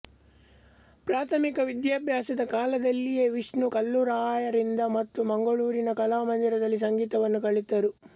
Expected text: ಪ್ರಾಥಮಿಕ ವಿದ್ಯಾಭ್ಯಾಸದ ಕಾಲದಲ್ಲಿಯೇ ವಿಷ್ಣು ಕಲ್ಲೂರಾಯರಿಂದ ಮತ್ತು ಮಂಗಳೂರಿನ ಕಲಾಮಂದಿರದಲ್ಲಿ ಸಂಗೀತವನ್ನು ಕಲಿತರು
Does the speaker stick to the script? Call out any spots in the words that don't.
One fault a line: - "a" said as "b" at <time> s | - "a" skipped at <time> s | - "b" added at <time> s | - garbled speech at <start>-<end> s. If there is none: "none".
none